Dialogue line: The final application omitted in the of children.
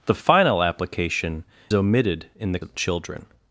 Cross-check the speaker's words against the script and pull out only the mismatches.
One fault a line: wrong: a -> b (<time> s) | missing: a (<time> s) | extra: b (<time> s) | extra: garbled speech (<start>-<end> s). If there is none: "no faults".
no faults